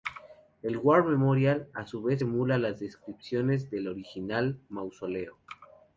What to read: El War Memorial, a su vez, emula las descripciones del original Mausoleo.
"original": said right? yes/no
yes